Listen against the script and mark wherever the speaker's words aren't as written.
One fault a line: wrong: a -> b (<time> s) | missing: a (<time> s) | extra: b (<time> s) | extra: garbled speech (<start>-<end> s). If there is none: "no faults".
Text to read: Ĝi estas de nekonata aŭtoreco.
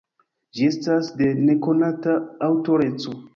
no faults